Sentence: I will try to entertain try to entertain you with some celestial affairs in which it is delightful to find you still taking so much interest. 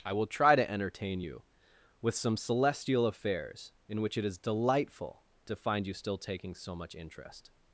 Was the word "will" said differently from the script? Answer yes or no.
no